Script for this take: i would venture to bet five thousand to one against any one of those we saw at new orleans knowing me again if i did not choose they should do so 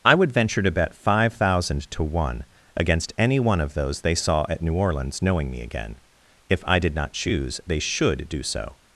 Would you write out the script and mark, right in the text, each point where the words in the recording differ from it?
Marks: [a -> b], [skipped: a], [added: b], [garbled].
i would venture to bet five thousand to one against any one of those [we -> they] saw at new orleans knowing me again if i did not choose they should do so